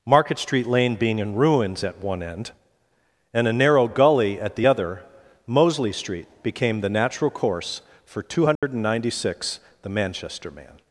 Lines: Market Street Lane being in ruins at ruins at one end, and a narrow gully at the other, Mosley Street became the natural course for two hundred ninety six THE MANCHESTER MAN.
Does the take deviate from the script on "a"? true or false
false